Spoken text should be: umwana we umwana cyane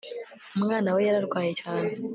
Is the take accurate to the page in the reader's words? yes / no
no